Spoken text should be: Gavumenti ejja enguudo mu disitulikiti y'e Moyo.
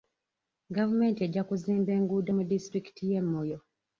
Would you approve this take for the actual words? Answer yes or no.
no